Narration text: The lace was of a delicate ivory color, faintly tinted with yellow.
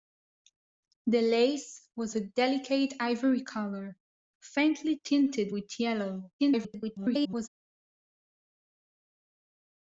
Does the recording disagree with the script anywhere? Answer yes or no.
yes